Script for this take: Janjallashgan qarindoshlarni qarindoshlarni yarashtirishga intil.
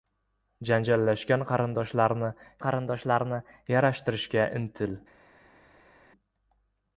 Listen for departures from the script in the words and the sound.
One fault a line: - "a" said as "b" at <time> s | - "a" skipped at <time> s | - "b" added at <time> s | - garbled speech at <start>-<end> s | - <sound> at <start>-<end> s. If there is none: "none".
none